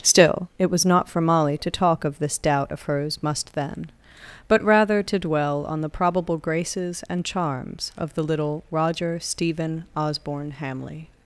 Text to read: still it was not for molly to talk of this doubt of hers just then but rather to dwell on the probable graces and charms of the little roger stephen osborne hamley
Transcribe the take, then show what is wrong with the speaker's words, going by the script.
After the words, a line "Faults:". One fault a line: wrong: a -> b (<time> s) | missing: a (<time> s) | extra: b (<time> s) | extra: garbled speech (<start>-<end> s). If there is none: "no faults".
still it was not for molly to talk of this doubt of hers must then but rather to dwell on the probable graces and charms of the little roger stephen osborne hamley
Faults:
wrong: just -> must (3.2 s)